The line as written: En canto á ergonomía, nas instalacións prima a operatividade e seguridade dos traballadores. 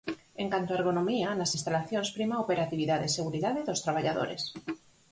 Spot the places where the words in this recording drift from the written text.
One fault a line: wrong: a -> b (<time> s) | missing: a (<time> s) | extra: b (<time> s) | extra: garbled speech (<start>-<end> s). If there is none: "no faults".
no faults